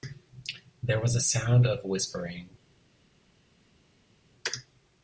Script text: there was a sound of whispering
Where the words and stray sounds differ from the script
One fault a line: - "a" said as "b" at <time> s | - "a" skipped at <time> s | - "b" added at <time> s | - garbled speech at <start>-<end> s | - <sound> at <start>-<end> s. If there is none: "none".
none